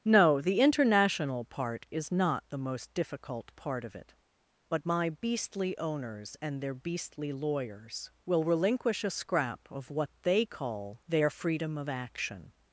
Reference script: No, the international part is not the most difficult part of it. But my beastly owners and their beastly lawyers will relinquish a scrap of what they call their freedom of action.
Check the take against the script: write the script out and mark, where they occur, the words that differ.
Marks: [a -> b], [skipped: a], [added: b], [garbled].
No, the international part is not the most difficult part of it. But my beastly owners and their beastly lawyers will relinquish a scrap of what they call their freedom of action.